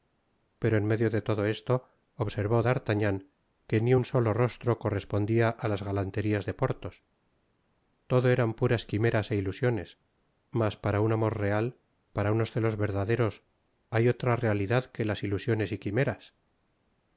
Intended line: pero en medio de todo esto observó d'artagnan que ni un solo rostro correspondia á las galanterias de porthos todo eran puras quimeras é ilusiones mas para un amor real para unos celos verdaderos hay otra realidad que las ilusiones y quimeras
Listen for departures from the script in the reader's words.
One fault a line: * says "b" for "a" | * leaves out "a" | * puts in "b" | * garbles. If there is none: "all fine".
all fine